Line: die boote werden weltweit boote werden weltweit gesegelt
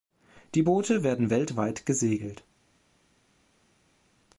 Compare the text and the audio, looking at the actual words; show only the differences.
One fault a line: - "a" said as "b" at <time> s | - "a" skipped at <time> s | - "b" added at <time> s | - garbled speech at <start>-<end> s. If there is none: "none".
- "boote werden weltweit" skipped at 1.9 s